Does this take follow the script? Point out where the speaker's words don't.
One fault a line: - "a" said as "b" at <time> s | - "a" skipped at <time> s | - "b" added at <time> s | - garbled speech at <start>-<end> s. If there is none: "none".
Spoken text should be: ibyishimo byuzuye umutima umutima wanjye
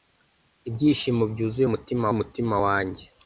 none